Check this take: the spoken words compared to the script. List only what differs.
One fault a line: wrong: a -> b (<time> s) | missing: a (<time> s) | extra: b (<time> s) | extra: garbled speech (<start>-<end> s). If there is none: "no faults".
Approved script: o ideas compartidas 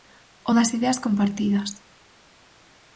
extra: das (0.6 s)